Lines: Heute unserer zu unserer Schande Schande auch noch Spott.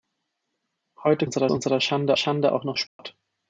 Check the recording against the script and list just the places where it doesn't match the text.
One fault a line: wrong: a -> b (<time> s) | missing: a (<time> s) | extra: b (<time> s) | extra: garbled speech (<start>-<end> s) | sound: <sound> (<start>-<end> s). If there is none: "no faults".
sound: dropout (2.9-3.0 s)